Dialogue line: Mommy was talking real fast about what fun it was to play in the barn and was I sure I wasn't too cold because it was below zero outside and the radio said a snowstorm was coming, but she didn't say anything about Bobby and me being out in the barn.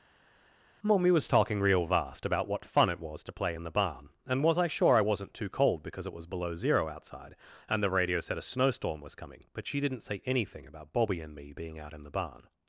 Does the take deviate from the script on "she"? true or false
false